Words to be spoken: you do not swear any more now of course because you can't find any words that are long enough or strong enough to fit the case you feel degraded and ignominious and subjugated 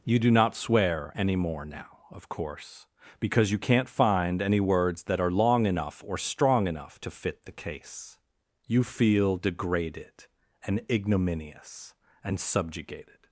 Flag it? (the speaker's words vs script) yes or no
no